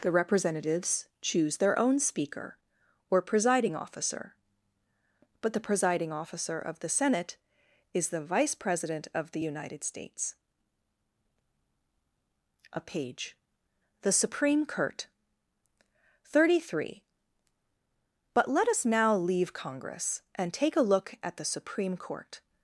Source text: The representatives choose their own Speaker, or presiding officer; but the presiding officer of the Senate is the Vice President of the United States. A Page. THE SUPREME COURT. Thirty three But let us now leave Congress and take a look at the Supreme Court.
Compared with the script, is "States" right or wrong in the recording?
right